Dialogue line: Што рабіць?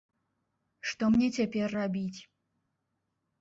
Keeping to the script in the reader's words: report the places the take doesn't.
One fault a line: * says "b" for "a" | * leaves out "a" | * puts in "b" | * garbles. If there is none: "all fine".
* puts in "мне цяпер"